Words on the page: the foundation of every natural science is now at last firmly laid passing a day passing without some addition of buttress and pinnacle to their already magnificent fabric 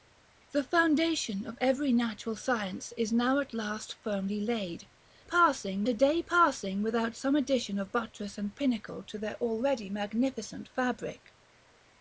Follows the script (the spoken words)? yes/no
yes